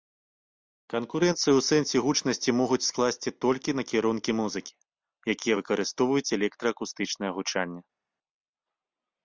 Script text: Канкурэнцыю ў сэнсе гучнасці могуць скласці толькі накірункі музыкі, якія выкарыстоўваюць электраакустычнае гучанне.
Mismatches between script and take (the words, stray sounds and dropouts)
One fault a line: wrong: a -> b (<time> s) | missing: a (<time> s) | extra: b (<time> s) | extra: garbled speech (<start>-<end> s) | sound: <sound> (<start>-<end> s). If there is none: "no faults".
no faults